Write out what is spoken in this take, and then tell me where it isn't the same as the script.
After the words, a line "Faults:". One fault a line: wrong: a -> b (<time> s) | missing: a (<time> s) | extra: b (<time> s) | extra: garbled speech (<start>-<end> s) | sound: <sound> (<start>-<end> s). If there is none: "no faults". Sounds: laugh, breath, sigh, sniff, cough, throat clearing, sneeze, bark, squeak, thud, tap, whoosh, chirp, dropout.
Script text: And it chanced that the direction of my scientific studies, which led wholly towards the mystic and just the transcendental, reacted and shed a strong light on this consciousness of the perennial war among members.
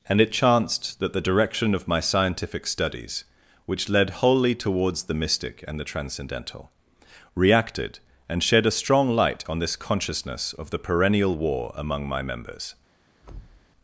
And it chanced that the direction of my scientific studies, which led wholly towards the mystic and the transcendental, reacted and shed a strong light on this consciousness of the perennial war among my members.
Faults:
missing: just (5.8 s)
extra: my (12.1 s)
sound: thud (13.2-13.7 s)